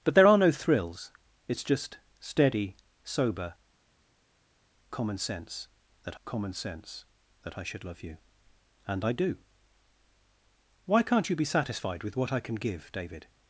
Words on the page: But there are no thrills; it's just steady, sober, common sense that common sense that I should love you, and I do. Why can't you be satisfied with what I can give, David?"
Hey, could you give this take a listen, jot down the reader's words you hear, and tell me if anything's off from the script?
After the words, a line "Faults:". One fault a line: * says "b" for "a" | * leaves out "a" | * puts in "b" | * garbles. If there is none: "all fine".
But there are no thrills; it's just steady, sober, common sense that common sense that I should love you, and I do. Why can't you be satisfied with what I can give, David?"
Faults:
all fine